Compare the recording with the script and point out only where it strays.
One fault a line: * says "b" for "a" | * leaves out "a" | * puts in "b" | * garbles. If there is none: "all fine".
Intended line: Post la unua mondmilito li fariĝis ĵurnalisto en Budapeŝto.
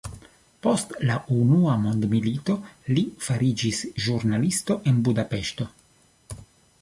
all fine